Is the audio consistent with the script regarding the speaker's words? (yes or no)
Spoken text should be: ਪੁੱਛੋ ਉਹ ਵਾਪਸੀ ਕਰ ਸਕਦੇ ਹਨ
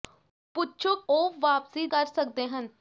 yes